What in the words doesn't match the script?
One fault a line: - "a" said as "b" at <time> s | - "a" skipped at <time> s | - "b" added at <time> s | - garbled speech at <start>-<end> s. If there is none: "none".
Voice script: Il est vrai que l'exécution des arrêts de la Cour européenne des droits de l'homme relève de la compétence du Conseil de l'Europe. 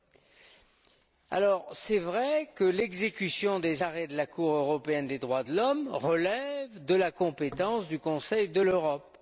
none